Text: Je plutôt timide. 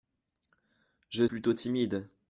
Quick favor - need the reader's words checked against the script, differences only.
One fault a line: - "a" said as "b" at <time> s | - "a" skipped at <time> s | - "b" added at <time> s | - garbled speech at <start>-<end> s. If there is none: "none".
none